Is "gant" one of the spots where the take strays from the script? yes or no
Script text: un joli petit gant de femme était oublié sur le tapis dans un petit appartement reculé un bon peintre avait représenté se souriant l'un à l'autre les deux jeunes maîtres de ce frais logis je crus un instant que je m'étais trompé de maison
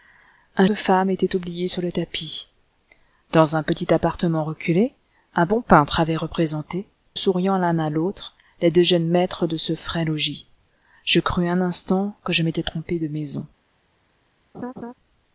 yes